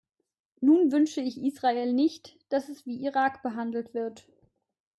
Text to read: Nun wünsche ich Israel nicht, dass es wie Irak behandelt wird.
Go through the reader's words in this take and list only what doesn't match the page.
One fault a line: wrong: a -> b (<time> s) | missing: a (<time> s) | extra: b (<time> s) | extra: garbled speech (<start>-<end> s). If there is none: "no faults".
no faults